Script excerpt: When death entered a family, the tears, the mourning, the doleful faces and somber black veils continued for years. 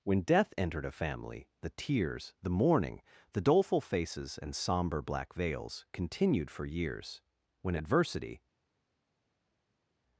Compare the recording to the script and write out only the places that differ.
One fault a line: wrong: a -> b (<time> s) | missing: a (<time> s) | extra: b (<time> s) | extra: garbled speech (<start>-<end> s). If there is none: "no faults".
extra: When adversity (7.6 s)